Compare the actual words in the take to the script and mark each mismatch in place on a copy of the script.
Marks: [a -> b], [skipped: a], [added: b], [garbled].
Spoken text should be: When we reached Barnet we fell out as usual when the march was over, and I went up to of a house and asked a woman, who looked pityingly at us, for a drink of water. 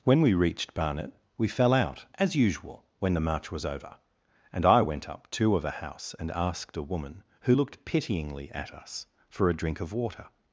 When we reached Barnet we fell out as usual when the march was over, and I went up to of a house and asked a woman, who looked pityingly at us, for a drink of water.